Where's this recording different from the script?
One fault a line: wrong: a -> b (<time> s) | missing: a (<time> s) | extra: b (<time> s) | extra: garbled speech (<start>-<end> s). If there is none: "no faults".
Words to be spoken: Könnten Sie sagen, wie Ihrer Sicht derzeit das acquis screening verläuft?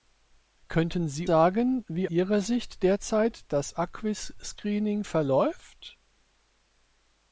no faults